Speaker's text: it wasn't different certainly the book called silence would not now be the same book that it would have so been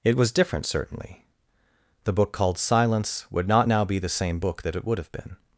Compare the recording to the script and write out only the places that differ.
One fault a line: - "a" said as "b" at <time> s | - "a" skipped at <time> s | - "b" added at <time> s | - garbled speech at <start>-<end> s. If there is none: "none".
- "wasn't" said as "was" at 0.2 s
- "so" skipped at 5.1 s